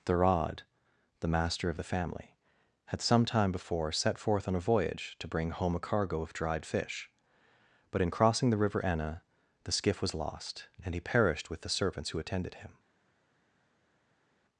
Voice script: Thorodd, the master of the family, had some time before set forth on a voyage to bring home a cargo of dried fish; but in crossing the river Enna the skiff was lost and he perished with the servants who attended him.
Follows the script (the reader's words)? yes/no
yes